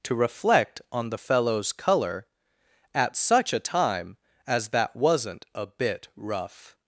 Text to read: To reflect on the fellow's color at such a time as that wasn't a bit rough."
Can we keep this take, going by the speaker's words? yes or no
yes